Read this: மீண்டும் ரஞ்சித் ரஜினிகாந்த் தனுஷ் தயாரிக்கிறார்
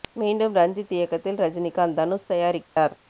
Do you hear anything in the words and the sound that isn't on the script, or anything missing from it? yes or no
yes